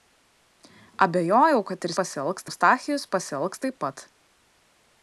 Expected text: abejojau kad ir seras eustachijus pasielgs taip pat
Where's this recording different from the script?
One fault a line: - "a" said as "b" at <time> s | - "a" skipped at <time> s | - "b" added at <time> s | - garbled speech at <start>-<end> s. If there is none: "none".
- "seras" said as "pasielgs" at 2.0 s